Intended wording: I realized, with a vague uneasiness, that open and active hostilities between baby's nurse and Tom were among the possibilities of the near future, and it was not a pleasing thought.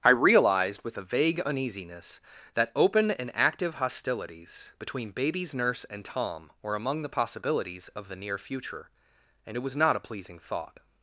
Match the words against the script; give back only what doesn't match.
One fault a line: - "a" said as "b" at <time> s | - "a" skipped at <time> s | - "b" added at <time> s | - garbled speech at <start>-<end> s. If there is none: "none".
none